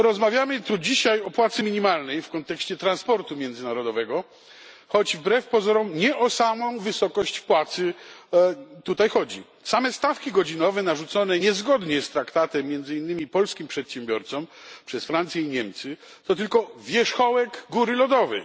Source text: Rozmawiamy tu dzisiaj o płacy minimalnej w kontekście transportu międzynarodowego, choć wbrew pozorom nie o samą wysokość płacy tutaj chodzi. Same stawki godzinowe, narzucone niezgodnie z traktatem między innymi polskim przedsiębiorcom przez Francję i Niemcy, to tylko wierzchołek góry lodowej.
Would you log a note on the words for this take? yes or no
no